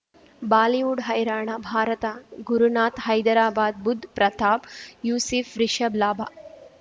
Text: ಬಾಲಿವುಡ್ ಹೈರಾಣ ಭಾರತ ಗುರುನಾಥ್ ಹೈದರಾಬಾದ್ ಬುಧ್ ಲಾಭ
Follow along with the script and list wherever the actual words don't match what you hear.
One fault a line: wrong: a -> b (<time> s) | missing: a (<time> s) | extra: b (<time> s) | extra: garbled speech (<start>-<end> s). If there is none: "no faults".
extra: ಪ್ರತಾಪ್ ಯೂಸಿಫ್ ರಿಷಬ್ (4.2 s)